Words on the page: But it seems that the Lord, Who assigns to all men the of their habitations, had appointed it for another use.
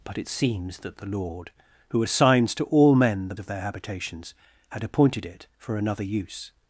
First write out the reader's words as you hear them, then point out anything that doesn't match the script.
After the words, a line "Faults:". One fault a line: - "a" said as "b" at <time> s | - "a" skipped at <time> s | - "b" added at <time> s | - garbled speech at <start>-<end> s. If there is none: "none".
But it seems that the Lord, Who assigns to all men the of their habitations, had appointed it for another use.
Faults:
none